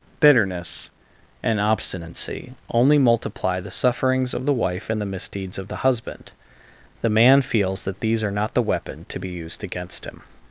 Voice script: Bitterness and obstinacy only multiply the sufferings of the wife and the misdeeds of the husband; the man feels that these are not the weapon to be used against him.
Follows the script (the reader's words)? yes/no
yes